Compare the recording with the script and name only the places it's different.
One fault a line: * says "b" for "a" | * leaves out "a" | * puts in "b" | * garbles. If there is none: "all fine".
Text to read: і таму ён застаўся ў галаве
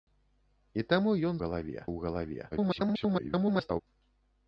* says "галаве" for "застаўся"
* garbles